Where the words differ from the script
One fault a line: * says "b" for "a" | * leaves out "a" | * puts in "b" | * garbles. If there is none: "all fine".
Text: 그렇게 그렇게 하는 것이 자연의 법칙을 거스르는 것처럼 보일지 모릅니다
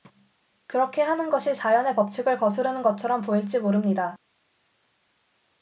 * leaves out "그렇게"